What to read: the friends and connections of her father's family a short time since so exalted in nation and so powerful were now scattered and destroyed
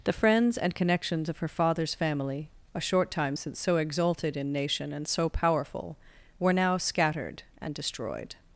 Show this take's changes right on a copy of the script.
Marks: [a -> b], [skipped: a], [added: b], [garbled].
the friends and connections of her father's family a short time since so exalted in nation and so powerful were now scattered and destroyed